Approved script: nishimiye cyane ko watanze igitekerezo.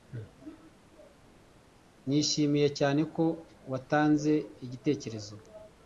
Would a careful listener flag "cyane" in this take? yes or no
no